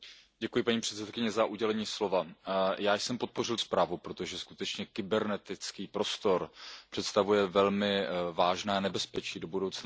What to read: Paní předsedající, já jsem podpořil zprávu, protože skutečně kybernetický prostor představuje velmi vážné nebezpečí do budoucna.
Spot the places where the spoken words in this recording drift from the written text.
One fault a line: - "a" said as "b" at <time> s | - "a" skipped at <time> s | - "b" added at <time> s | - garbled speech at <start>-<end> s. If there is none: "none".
none